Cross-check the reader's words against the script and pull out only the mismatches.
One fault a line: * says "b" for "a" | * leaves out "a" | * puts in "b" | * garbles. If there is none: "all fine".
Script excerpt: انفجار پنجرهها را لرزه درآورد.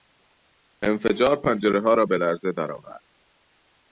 * puts in "به"